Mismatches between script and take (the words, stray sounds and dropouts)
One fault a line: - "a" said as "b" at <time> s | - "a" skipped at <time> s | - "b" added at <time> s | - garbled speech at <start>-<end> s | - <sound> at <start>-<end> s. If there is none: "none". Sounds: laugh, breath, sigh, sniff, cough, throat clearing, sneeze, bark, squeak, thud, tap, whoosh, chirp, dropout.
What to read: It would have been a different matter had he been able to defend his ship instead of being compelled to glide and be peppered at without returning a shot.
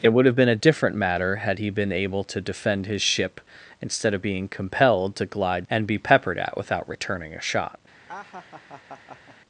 - laugh at 8.1-9.4 s